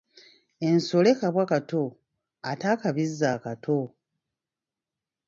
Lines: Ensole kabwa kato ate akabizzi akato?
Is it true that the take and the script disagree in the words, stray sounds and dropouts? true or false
false